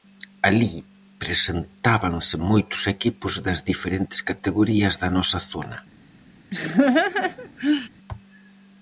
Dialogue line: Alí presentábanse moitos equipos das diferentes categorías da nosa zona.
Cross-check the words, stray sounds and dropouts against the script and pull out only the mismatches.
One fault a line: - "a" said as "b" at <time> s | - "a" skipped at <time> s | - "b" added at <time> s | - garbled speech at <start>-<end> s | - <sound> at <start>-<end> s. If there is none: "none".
- laugh at 6.5-7.9 s